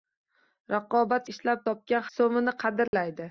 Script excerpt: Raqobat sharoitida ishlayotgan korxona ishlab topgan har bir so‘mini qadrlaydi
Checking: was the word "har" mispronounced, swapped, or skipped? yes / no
yes